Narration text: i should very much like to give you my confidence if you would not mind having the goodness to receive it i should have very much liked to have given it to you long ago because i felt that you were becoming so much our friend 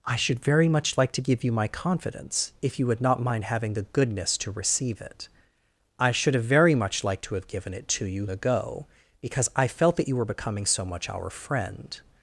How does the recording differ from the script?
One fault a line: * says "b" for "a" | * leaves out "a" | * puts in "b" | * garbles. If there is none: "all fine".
* leaves out "long"